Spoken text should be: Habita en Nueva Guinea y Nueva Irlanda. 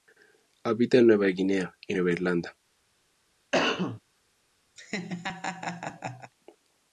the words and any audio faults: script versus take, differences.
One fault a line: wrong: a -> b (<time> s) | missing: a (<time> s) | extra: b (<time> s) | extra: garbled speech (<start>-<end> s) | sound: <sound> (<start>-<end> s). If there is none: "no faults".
sound: cough (3.5-4.0 s)
sound: laugh (4.8-6.3 s)